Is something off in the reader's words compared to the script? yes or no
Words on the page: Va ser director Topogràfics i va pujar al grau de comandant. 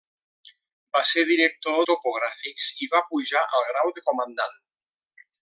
no